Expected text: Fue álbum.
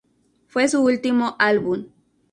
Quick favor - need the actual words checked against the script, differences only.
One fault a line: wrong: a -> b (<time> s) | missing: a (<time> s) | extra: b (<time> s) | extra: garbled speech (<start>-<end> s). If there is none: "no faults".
extra: su último (0.6 s)